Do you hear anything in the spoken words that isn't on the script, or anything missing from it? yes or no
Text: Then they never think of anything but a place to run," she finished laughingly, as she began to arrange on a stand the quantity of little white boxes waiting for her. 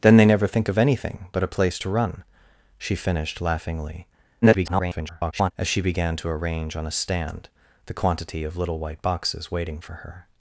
yes